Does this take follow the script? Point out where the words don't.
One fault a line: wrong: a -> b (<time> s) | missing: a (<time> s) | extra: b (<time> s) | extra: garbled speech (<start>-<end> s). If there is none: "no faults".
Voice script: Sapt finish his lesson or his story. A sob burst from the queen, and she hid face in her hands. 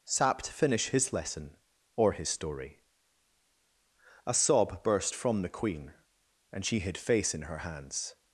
no faults